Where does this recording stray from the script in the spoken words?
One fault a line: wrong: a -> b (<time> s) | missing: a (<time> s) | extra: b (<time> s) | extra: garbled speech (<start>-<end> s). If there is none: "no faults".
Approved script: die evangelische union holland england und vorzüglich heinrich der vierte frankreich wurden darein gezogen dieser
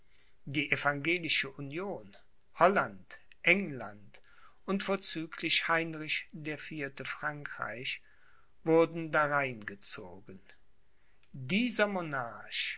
no faults